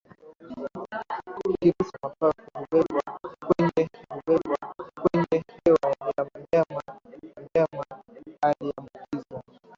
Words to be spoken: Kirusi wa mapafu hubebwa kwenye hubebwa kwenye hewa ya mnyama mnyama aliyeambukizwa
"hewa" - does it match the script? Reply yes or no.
yes